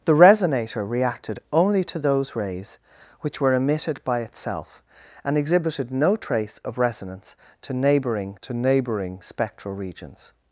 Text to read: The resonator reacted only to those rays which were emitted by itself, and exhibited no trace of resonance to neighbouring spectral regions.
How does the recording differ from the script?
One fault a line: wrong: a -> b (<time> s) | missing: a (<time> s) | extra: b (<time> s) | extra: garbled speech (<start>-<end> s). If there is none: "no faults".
extra: to neighbouring (8.4 s)